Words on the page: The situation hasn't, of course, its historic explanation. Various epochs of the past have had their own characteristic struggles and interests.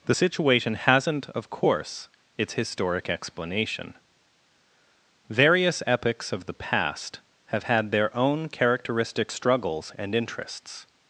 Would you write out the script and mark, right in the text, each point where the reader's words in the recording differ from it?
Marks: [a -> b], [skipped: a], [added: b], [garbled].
The situation hasn't, of course, its historic explanation. Various epochs of the past have had their own characteristic struggles and interests.